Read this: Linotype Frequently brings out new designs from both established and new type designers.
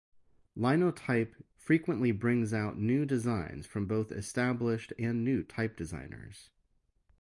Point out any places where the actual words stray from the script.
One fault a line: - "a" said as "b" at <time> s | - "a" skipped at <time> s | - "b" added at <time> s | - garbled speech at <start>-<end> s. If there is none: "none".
none